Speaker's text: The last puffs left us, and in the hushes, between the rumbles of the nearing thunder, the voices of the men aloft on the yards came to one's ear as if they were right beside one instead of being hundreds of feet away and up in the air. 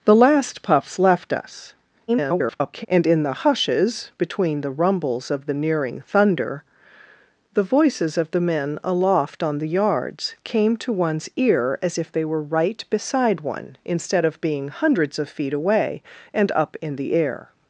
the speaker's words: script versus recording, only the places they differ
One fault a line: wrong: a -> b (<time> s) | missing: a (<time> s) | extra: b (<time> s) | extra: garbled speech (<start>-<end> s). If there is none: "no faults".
extra: garbled speech (2.1-2.9 s)